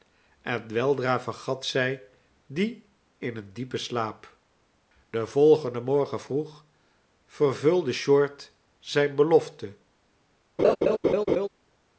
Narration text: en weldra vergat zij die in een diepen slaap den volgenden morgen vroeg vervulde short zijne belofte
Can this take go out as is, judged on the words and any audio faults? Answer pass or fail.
fail